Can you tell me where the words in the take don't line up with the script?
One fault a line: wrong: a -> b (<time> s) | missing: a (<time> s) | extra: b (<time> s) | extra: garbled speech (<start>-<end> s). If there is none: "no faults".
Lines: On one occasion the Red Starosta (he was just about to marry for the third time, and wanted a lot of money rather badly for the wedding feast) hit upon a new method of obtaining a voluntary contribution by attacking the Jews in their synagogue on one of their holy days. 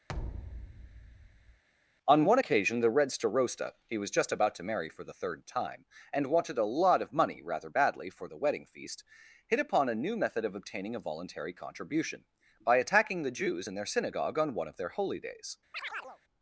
no faults